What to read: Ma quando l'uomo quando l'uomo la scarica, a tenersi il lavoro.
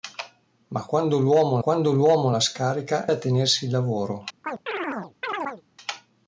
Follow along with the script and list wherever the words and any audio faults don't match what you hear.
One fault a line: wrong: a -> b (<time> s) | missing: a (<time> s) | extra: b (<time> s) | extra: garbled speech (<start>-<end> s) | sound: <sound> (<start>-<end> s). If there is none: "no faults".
sound: chirp (4.4-5.6 s)